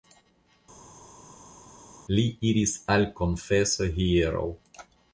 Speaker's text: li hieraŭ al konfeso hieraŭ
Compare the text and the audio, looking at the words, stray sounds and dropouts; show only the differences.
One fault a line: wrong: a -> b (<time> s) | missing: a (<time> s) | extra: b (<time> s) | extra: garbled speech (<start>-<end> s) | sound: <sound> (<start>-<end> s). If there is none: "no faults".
wrong: hieraŭ -> iris (2.5 s)